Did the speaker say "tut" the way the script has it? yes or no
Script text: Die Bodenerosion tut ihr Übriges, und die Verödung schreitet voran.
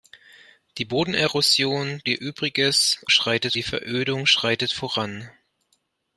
no